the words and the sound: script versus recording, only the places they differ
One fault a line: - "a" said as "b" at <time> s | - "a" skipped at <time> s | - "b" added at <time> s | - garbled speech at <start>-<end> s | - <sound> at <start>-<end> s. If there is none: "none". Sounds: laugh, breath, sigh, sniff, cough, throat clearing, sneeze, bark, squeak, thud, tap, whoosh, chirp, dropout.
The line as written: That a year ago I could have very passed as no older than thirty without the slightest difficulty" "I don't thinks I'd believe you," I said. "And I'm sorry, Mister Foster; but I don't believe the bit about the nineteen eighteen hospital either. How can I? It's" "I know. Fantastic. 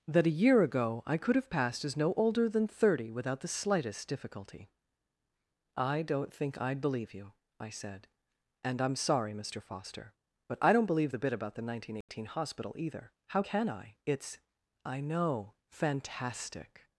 - "very" skipped at 1.5 s
- "thinks" said as "think" at 6.3 s
- dropout at 12.0-12.1 s